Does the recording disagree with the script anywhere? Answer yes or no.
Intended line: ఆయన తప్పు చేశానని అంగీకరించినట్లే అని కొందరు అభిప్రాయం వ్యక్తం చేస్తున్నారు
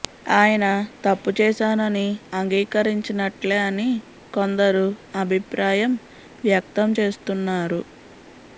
no